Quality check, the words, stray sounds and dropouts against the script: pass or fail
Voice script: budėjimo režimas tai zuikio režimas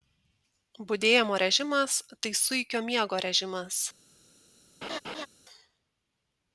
fail